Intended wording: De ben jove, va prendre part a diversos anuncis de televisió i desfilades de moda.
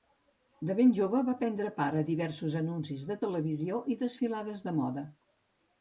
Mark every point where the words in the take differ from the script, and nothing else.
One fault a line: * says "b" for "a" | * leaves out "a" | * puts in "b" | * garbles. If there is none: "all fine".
all fine